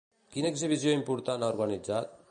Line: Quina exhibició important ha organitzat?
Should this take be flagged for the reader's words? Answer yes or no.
no